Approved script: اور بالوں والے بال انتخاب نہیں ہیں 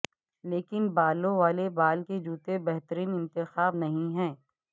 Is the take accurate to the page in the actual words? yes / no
no